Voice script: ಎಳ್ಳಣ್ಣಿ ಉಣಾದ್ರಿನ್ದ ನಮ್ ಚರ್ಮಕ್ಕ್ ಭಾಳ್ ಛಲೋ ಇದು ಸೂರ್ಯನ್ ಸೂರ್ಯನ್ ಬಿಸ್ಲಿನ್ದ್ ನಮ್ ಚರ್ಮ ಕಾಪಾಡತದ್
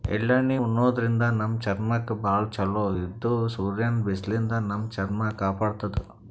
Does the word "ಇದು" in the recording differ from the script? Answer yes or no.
no